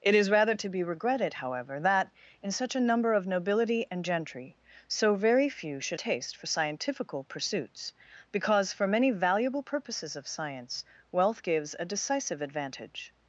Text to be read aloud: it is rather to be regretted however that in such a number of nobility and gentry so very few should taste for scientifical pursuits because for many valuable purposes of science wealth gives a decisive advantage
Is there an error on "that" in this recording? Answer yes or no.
no